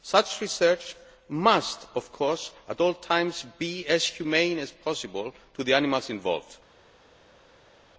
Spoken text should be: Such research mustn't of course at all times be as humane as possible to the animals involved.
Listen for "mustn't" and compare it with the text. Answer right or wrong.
wrong